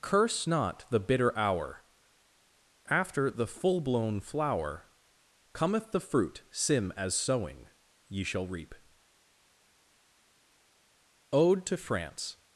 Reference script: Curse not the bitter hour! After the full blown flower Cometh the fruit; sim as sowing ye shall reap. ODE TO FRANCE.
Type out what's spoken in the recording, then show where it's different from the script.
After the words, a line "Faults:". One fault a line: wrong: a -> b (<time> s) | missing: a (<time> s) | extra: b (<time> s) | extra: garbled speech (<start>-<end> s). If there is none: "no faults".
Curse not the bitter hour! After the full blown flower Cometh the fruit; sim as sowing ye shall reap. ODE TO FRANCE.
Faults:
no faults